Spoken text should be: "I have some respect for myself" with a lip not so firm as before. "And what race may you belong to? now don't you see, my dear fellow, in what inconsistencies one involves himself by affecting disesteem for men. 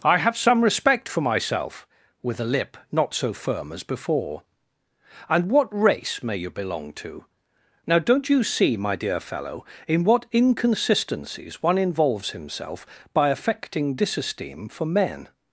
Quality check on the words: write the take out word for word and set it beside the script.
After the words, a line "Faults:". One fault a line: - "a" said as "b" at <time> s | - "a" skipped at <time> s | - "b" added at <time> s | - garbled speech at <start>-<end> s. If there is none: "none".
"I have some respect for myself" with a lip not so firm as before. "And what race may you belong to? now don't you see, my dear fellow, in what inconsistencies one involves himself by affecting disesteem for men.
Faults:
none